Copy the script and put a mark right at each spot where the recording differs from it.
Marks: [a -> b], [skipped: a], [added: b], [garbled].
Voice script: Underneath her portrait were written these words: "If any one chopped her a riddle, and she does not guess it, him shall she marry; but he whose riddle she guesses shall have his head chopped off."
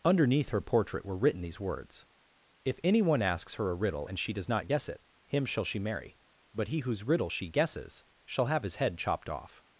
Underneath her portrait were written these words: "If any one [chopped -> asks] her a riddle, and she does not guess it, him shall she marry; but he whose riddle she guesses shall have his head chopped off."